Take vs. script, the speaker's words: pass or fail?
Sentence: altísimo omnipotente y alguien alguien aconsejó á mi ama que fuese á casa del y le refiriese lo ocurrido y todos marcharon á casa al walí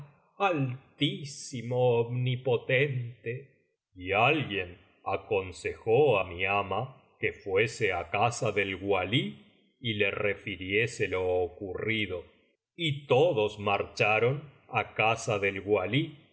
fail